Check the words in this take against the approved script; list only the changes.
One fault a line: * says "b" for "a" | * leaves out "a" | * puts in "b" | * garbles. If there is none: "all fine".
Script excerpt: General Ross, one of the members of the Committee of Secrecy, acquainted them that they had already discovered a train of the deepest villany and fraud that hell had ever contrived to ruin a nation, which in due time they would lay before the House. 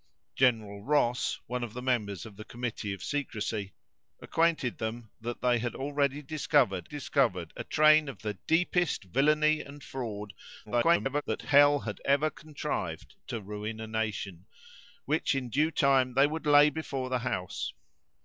* puts in "discovered"
* garbles